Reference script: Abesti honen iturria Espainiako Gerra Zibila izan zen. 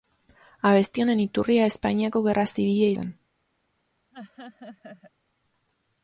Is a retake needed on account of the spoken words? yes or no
yes